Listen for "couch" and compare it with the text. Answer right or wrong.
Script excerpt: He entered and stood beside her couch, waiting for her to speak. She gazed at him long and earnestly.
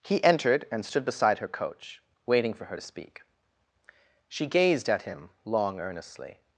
wrong